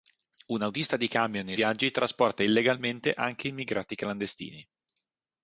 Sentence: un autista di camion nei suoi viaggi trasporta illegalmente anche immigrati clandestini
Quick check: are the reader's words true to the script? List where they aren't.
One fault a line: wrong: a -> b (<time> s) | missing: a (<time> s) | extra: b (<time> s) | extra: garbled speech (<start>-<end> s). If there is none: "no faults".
missing: suoi (1.6 s)